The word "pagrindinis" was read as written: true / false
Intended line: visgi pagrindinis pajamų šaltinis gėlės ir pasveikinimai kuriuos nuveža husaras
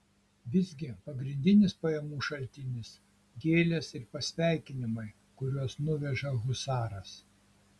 true